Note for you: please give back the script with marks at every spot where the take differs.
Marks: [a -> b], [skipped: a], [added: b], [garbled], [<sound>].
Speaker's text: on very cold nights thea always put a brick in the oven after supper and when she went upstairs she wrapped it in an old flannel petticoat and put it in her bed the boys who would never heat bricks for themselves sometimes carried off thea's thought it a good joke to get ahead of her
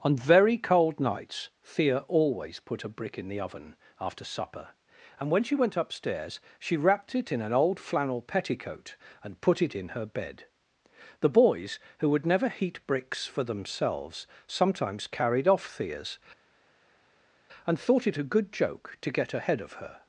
on very cold nights thea always put a brick in the oven after supper and when she went upstairs she wrapped it in an old flannel petticoat and put it in her bed the boys who would never heat bricks for themselves sometimes carried off thea's [added: and] thought it a good joke to get ahead of her